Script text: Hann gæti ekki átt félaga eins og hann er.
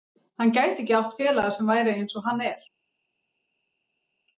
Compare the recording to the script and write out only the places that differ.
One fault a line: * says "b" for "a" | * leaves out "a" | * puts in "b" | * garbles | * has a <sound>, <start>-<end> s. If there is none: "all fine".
* puts in "sem væri"